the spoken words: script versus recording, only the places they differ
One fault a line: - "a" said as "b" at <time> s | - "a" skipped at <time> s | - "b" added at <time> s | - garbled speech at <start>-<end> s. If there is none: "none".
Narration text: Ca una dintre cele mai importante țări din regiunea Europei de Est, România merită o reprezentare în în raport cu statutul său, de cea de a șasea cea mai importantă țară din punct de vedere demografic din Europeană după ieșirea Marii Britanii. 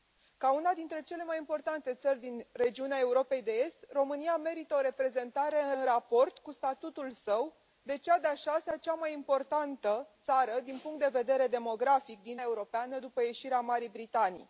none